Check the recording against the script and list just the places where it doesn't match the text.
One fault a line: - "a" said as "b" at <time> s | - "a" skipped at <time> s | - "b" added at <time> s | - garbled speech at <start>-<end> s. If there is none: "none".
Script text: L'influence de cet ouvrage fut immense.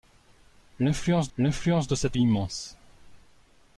- "l'influence" added at 1.4 s
- "ouvrage fut" skipped at 2.2 s